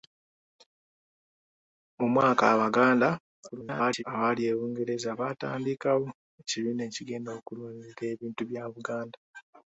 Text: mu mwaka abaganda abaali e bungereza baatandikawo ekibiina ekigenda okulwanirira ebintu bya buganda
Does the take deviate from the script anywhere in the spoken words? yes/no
yes